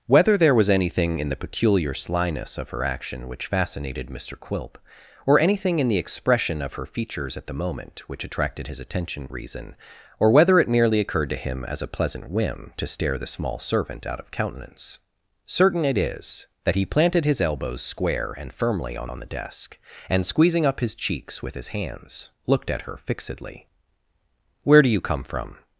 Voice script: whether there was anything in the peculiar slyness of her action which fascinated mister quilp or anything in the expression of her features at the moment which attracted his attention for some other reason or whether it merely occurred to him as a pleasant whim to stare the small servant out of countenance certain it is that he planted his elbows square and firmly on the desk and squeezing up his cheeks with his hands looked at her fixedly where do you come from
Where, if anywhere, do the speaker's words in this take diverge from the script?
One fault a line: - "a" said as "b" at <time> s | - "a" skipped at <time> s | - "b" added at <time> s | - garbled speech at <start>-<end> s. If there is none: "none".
- "for some other" skipped at 9.3 s
- "on" added at 19.1 s